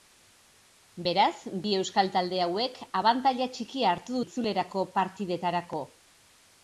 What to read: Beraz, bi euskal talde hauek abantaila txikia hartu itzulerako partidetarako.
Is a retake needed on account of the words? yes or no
no